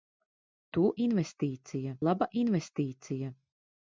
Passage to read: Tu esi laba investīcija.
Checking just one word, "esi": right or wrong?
wrong